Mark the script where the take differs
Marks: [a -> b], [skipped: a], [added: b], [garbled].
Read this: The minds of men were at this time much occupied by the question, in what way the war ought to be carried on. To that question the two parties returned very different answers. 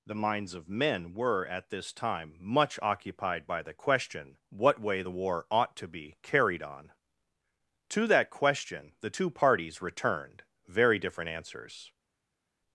The minds of men were at this time much occupied by the question, [skipped: in] what way the war ought to be carried on. To that question the two parties returned very different answers.